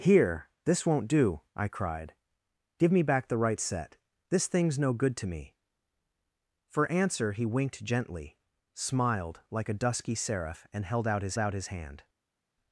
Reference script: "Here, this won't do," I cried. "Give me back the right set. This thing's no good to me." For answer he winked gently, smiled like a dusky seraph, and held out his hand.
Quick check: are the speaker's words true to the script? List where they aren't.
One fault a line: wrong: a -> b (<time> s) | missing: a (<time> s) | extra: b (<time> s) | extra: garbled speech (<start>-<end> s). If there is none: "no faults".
extra: out his (11.4 s)